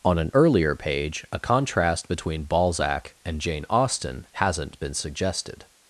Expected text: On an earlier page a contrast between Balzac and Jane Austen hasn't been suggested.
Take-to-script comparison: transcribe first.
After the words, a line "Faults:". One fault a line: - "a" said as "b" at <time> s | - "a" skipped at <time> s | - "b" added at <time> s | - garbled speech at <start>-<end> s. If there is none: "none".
On an earlier page a contrast between Balzac and Jane Austen hasn't been suggested.
Faults:
none